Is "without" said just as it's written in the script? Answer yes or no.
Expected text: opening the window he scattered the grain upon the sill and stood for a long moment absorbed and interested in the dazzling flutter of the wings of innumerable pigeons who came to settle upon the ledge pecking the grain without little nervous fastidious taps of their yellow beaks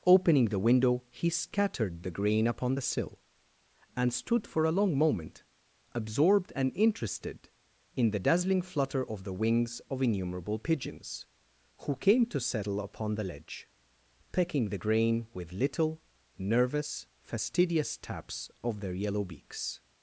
no